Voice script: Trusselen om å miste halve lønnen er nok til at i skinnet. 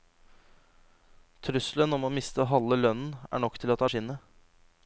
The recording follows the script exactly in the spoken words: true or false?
true